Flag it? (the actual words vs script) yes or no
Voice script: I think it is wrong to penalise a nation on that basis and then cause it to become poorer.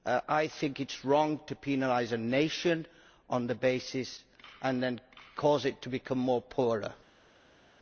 no